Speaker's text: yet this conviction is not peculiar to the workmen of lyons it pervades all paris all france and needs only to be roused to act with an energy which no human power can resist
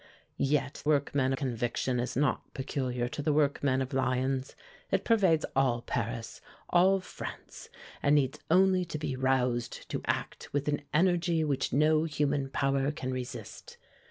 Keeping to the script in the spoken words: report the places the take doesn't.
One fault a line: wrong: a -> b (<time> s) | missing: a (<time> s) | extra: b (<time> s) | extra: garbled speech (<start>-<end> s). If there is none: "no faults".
wrong: this -> workmen (0.8 s)